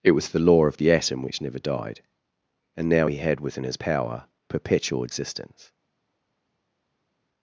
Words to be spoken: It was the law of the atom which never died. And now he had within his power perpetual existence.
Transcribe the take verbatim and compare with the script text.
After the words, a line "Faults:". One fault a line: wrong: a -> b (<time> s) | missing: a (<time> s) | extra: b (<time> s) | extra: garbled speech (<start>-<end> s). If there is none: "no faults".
It was the law of the atom which never died. And now he had within his power perpetual existence.
Faults:
no faults